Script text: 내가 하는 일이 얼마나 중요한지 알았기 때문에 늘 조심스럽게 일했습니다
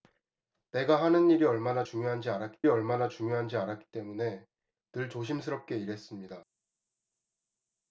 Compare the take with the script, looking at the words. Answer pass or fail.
fail